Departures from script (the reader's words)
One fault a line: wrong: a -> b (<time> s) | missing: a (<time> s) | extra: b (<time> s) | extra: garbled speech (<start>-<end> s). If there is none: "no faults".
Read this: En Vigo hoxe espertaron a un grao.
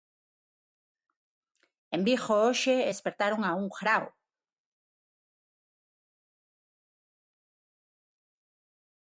no faults